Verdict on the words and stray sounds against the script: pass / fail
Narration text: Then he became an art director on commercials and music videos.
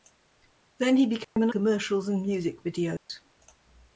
fail